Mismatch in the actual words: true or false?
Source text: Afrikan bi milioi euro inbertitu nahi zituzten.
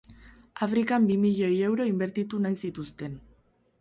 false